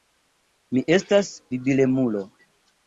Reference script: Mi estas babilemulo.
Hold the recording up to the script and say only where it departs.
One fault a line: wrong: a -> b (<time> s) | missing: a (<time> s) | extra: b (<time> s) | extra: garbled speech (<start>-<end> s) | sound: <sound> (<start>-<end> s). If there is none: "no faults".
no faults